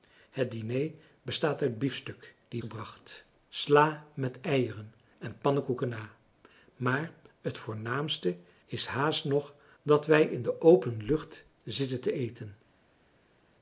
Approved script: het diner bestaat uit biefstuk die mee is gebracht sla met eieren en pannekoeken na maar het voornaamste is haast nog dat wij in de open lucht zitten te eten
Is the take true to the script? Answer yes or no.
no